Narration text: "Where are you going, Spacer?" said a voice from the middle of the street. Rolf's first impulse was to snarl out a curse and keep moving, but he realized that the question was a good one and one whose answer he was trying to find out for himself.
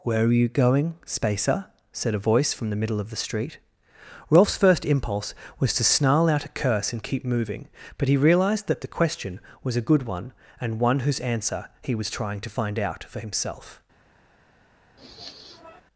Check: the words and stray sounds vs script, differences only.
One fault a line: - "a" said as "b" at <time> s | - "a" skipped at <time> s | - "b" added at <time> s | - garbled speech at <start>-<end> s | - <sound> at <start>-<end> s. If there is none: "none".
- sniff at 15.0-15.8 s